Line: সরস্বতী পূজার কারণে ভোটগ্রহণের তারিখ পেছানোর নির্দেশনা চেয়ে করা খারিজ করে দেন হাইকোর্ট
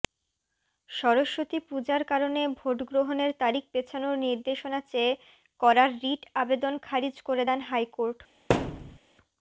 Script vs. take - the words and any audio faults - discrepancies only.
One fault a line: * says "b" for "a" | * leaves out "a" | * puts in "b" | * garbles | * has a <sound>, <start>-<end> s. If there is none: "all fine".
* puts in "রিট আবেদন"
* has a thud, 8.5-9.0 s